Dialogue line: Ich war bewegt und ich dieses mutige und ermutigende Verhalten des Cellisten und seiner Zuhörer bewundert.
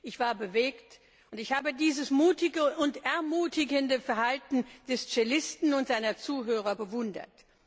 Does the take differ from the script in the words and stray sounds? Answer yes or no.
yes